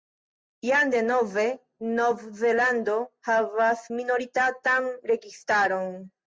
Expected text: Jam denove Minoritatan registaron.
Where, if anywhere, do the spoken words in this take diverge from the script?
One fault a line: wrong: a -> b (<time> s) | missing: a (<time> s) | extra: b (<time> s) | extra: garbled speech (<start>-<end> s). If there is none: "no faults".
extra: Nov Zelando havas (2.0 s)